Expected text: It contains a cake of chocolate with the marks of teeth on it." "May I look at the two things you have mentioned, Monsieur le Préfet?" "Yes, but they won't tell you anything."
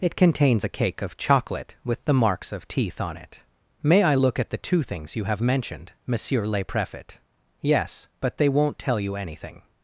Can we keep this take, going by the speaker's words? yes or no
yes